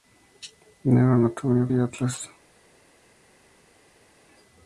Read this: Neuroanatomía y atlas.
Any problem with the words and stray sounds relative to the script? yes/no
no